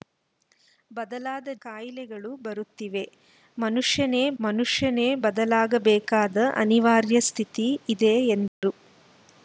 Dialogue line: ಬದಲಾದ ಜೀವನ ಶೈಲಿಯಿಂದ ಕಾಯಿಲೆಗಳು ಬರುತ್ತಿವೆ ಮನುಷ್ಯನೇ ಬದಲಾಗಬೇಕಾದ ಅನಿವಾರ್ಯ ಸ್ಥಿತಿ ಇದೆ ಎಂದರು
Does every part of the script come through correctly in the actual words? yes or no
no